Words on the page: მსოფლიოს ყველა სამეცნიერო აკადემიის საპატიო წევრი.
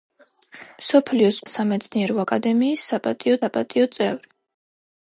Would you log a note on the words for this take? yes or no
yes